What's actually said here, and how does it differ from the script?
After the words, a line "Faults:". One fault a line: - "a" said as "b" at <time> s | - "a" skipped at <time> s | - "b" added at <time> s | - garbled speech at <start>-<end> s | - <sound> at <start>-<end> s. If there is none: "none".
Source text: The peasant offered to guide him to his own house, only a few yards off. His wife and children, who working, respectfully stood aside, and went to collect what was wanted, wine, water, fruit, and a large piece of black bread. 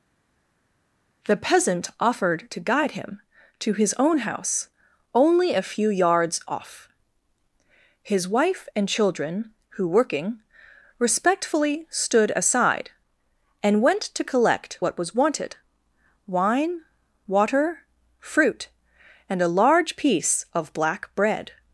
The peasant offered to guide him to his own house, only a few yards off. His wife and children, who working, respectfully stood aside, and went to collect what was wanted, wine, water, fruit, and a large piece of black bread.
Faults:
none